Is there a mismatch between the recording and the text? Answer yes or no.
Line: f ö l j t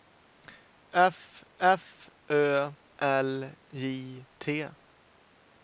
yes